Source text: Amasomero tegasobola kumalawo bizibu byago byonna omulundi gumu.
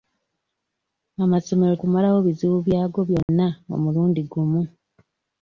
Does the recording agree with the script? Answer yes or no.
no